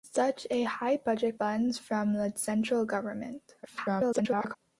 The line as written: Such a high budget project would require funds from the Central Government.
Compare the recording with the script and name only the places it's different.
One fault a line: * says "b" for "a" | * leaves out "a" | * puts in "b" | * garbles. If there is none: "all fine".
* leaves out "project would require"
* garbles